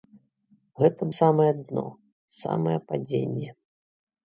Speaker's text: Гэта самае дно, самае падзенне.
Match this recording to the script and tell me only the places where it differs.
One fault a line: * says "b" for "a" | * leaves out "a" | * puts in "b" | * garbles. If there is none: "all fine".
all fine